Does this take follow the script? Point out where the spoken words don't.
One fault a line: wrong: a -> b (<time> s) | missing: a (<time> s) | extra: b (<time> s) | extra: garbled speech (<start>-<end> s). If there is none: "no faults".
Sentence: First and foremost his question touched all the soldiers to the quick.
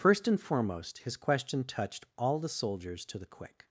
no faults